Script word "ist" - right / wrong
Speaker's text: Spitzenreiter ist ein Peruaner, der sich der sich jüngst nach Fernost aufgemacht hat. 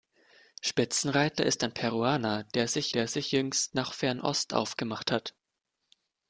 right